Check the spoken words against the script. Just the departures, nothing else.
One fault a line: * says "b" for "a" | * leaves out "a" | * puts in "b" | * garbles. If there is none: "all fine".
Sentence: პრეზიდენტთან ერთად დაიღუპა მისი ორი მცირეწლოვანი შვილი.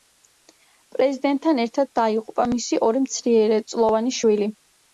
all fine